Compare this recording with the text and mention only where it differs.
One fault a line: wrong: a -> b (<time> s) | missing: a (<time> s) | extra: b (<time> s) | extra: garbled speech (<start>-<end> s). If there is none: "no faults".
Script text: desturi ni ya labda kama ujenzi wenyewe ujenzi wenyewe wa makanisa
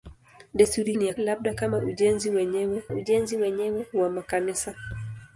no faults